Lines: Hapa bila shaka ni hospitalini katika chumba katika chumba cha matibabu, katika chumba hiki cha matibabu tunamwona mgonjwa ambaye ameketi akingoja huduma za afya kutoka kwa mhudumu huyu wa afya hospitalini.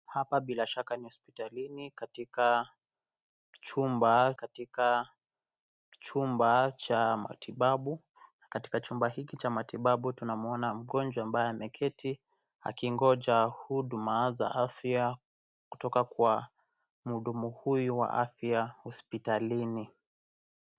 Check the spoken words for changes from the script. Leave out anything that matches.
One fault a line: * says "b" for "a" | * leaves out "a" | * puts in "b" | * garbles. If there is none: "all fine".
all fine